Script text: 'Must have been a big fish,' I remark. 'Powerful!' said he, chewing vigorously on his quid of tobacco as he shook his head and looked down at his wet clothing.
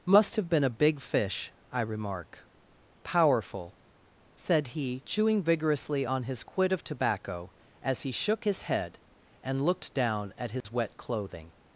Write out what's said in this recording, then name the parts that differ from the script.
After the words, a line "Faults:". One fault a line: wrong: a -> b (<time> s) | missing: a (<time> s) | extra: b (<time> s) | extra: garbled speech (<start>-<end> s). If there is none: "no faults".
'Must have been a big fish,' I remark. 'Powerful!' said he, chewing vigorously on his quid of tobacco as he shook his head and looked down at his wet clothing.
Faults:
no faults